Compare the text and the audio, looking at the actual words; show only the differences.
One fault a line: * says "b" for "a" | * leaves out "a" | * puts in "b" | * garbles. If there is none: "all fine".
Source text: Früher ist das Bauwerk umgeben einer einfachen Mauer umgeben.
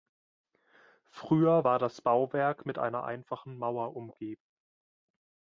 * says "war" for "ist"
* says "mit" for "umgeben"